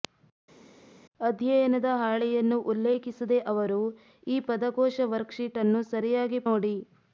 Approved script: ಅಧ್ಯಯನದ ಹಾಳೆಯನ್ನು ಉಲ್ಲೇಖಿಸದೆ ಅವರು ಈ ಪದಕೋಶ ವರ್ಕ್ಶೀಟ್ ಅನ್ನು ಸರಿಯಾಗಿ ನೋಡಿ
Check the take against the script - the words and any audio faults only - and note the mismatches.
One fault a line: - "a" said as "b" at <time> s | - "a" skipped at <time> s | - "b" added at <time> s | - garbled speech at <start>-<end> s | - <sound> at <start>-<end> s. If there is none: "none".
none